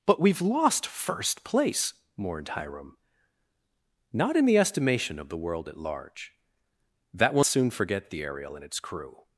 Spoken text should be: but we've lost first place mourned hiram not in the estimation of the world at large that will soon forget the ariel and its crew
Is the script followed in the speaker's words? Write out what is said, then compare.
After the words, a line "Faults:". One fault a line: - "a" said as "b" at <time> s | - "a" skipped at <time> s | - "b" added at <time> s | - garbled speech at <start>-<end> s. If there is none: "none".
but we've lost first place mourned hiram not in the estimation of the world at large that will soon forget the ariel and its crew
Faults:
none